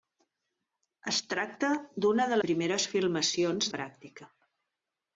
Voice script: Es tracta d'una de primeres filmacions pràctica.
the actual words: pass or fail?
pass